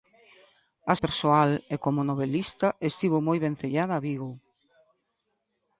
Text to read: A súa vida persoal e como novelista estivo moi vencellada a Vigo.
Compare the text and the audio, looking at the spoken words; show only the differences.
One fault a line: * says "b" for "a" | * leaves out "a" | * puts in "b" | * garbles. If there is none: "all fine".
* leaves out "súa vida"